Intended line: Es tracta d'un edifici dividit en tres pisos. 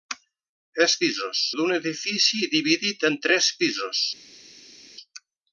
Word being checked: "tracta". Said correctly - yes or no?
no